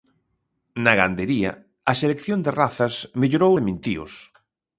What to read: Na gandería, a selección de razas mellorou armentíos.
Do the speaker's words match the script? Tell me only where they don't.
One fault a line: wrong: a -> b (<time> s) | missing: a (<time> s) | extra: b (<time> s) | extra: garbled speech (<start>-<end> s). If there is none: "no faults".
no faults